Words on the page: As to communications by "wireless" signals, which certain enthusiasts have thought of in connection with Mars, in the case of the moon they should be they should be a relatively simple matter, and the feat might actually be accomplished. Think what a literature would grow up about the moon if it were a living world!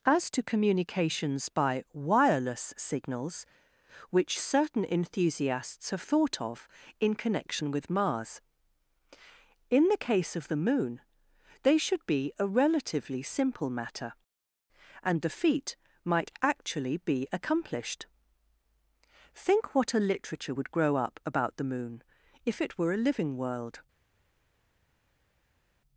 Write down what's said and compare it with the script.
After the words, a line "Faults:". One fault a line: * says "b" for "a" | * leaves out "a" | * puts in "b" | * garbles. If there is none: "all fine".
As to communications by "wireless" signals, which certain enthusiasts have thought of in connection with Mars, in the case of the moon they should be a relatively simple matter, and the feat might actually be accomplished. Think what a literature would grow up about the moon if it were a living world!
Faults:
* leaves out "they should be"